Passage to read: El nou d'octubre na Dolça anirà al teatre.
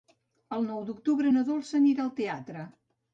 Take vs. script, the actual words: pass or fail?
pass